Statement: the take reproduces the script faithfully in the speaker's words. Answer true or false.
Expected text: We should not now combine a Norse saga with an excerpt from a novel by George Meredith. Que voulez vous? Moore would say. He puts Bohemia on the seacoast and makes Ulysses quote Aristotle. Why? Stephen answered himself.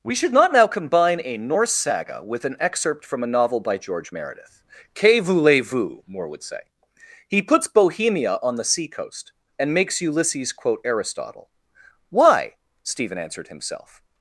true